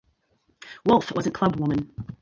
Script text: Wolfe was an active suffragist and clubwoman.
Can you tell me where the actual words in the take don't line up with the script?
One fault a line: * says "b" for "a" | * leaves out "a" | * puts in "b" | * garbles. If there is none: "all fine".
* leaves out "active suffragist and"